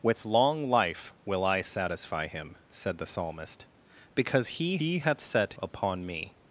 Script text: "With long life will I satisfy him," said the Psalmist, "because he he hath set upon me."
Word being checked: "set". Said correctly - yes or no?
yes